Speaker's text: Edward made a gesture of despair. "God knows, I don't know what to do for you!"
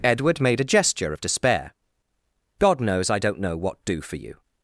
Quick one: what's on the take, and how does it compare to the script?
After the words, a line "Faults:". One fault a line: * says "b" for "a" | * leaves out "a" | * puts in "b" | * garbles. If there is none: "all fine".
Edward made a gesture of despair. "God knows, I don't know what do for you!"
Faults:
* leaves out "to"